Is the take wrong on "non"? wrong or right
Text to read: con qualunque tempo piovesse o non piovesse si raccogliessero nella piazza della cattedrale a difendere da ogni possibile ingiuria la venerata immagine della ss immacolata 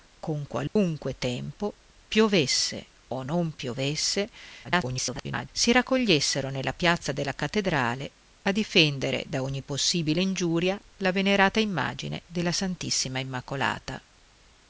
right